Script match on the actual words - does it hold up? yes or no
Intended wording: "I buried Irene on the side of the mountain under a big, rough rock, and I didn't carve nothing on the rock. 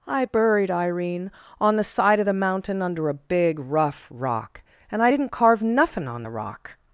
yes